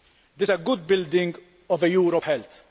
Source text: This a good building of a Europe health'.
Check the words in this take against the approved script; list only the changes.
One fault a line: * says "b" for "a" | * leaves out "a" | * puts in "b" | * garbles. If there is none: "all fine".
all fine